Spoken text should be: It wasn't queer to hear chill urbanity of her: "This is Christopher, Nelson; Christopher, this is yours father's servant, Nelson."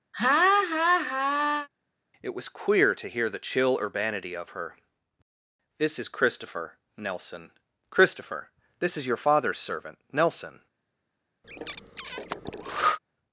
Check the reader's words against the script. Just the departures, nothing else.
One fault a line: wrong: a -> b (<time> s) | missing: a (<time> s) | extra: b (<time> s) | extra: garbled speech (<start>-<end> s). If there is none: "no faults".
wrong: wasn't -> was (2.3 s)
extra: the (3.3 s)
wrong: yours -> your (9.1 s)